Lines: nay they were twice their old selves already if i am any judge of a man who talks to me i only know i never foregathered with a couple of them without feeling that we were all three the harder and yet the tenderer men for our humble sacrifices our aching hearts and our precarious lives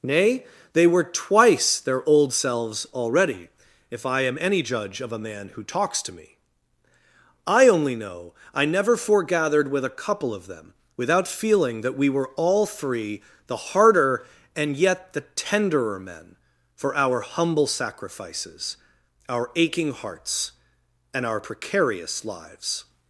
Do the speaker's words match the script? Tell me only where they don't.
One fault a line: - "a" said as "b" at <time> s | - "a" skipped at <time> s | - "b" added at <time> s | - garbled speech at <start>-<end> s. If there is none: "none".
none